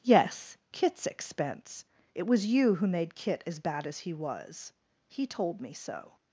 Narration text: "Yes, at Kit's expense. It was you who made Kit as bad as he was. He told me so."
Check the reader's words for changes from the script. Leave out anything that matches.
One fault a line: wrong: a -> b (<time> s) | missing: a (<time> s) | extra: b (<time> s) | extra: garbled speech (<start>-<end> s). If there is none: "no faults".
missing: at (0.6 s)